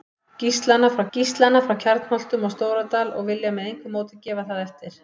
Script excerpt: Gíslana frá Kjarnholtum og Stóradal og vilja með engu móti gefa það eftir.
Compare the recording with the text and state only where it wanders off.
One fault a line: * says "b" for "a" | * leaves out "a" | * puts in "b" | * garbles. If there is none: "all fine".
* puts in "gíslana frá"